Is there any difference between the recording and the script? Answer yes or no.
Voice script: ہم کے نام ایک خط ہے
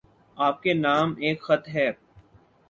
yes